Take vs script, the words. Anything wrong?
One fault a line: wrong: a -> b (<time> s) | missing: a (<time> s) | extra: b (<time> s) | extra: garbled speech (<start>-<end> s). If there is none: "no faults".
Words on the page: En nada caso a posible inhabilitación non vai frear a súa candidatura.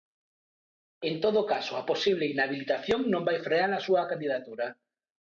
wrong: nada -> todo (1.2 s)